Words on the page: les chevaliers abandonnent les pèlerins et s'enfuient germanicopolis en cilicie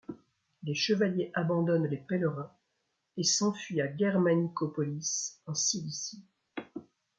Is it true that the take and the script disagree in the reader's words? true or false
true